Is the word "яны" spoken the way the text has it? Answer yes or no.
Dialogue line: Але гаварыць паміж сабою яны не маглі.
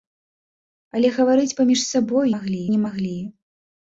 no